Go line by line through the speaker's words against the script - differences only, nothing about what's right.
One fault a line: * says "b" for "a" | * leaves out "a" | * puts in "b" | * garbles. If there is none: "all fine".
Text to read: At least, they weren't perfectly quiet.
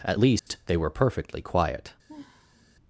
* says "were" for "weren't"